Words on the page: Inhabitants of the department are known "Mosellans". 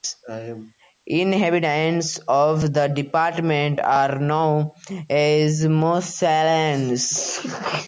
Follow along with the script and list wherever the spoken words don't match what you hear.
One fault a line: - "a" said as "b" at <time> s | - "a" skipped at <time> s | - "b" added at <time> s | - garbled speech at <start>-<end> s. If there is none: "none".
- "as" added at 5.1 s